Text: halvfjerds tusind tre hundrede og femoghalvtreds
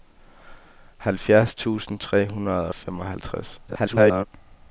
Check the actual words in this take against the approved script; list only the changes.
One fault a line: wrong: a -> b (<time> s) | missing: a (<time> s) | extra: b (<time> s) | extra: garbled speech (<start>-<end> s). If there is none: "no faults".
extra: garbled speech (3.7-4.3 s)